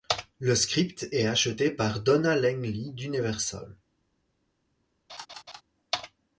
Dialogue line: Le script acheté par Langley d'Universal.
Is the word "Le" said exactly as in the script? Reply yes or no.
yes